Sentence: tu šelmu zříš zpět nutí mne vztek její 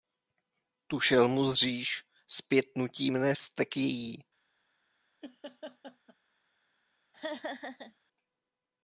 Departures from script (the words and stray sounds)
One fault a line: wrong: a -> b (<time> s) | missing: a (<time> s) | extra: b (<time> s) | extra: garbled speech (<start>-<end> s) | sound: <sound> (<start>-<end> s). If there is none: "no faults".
sound: laugh (5.2-6.2 s)
sound: laugh (7.1-8.0 s)